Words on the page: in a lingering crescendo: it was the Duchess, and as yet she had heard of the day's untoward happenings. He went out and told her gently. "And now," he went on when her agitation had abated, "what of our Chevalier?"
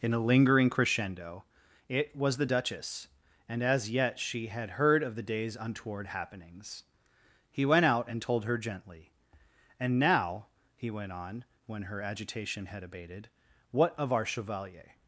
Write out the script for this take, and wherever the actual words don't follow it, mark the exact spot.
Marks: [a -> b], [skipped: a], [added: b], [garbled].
in a lingering crescendo: it was the Duchess, and as yet she had heard of the day's untoward happenings. He went out and told her gently. "And now," he went on when her agitation had abated, "what of our Chevalier?"